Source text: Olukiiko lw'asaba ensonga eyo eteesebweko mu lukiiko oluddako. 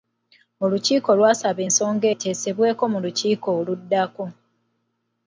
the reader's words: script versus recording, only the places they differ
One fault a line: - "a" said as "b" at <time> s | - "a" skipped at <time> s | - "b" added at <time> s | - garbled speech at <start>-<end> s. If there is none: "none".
- "eyo" skipped at 2.1 s